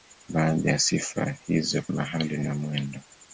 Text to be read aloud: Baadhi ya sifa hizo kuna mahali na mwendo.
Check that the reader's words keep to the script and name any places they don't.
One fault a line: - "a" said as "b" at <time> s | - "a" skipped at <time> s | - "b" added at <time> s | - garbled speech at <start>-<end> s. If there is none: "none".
- "kuna" skipped at 1.8 s